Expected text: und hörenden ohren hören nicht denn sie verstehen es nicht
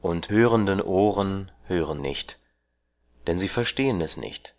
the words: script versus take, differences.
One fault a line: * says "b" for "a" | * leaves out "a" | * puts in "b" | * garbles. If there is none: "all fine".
all fine